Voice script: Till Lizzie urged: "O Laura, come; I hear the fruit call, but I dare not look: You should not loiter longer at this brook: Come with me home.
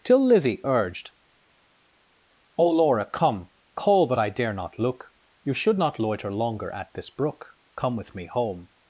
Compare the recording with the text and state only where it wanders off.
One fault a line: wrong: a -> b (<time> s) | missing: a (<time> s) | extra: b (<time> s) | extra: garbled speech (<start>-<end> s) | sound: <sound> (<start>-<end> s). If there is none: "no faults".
missing: I hear the fruit (3.5 s)